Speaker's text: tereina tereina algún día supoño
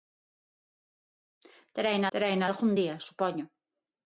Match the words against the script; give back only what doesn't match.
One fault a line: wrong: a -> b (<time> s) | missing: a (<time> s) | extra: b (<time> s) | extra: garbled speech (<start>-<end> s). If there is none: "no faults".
no faults